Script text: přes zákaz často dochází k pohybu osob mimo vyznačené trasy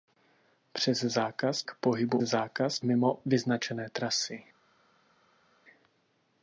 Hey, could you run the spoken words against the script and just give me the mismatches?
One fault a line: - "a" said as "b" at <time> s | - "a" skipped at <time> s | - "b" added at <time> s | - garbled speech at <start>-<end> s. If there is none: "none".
- "často dochází" skipped at 1.6 s
- "osob" said as "zákaz" at 2.2 s